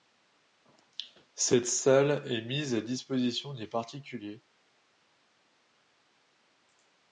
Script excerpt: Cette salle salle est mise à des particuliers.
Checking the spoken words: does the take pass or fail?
fail